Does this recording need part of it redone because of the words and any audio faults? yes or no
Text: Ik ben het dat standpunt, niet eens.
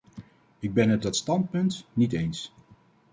no